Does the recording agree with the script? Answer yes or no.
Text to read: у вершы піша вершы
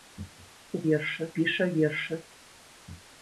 yes